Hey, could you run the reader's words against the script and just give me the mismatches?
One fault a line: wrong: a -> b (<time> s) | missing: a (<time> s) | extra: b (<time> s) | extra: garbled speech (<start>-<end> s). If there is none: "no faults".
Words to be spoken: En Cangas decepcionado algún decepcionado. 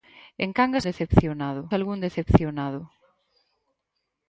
no faults